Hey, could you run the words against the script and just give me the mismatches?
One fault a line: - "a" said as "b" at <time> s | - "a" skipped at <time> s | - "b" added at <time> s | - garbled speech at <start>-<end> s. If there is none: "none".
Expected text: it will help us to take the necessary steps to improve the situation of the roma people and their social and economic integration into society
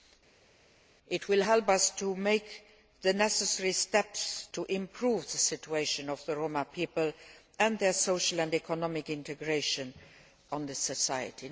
none